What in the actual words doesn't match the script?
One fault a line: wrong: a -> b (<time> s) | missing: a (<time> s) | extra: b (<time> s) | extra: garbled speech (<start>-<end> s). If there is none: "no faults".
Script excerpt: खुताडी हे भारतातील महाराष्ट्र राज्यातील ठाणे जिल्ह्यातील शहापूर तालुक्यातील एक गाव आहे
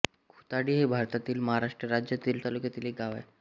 missing: ठाणे जिल्ह्यातील शहापूर (2.4 s)